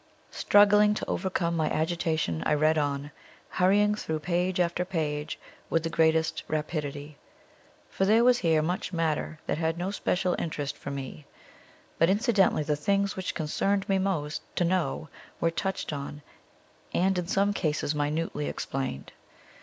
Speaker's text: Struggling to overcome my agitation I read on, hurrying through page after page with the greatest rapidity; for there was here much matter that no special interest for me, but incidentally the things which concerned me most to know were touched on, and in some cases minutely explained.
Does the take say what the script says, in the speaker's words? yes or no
no